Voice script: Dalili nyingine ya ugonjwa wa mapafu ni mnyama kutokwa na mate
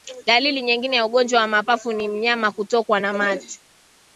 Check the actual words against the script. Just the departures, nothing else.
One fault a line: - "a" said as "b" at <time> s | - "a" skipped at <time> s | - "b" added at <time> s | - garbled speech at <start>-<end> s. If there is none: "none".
none